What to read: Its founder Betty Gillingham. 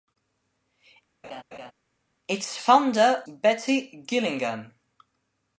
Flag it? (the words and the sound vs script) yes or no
yes